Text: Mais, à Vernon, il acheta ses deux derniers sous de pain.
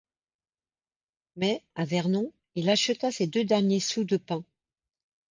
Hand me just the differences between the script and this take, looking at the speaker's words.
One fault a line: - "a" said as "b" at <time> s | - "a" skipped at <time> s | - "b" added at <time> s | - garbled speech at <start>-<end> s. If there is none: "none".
none